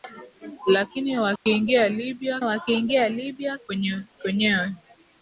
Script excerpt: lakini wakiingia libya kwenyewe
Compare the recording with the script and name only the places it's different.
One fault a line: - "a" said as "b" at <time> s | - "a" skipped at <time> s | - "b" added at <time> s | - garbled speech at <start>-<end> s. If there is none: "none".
- "wakiingia libya" added at 2.4 s